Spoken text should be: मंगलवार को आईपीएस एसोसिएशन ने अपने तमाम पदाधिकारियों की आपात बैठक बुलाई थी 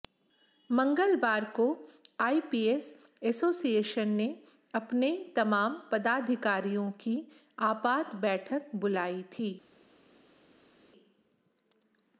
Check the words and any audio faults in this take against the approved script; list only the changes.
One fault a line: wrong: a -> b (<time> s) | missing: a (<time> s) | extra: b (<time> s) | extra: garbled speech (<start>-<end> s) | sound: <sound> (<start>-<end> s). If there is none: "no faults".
no faults